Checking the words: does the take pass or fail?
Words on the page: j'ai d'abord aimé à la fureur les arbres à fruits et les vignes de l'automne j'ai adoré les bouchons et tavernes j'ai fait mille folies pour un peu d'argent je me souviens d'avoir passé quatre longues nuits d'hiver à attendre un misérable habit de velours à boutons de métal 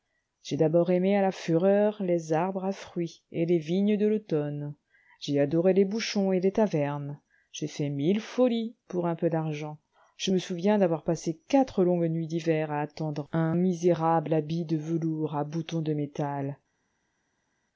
fail